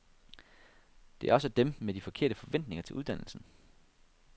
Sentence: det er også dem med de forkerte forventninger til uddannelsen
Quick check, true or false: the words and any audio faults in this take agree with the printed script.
true